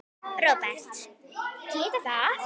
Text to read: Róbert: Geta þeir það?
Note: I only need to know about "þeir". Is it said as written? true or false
false